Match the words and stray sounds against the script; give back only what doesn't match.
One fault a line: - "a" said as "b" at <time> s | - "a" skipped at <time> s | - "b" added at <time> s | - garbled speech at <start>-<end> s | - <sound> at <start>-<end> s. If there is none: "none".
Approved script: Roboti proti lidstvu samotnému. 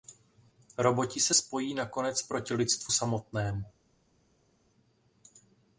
- "se spojí nakonec" added at 1.2 s